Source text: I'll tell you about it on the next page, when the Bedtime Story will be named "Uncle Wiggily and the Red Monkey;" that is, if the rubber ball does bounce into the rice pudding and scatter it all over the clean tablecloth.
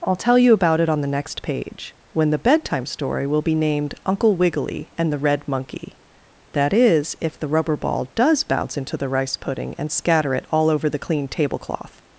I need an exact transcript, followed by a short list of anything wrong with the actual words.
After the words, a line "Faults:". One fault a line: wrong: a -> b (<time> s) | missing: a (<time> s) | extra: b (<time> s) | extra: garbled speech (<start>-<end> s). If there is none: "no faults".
I'll tell you about it on the next page, when the Bedtime Story will be named "Uncle Wiggily and the Red Monkey;" that is, if the rubber ball does bounce into the rice pudding and scatter it all over the clean tablecloth.
Faults:
no faults